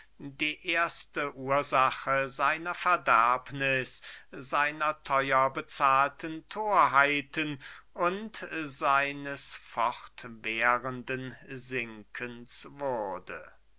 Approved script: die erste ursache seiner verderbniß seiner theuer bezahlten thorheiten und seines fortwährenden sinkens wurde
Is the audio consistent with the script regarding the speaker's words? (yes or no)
yes